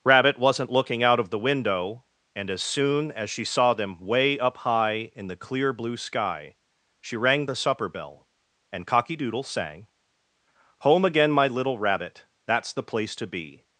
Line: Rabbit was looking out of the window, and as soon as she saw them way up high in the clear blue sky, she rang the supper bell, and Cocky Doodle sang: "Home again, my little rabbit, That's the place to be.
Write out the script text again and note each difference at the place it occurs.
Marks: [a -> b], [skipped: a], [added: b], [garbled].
Rabbit [was -> wasn't] looking out of the window, and as soon as she saw them way up high in the clear blue sky, she rang the supper bell, and Cocky Doodle sang: "Home again, my little rabbit, That's the place to be.